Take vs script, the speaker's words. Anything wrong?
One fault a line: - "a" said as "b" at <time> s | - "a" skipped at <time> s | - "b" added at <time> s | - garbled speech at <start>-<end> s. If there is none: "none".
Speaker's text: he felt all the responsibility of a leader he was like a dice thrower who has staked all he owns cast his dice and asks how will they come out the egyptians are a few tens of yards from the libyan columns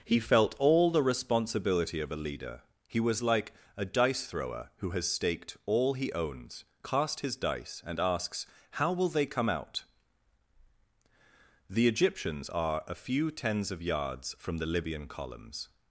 none